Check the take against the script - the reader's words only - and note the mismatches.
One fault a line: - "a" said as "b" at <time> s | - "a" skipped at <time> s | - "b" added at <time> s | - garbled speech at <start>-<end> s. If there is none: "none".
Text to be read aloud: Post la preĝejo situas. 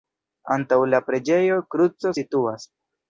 - "Post" said as "Antaŭ" at 0.5 s
- "kruco" added at 1.8 s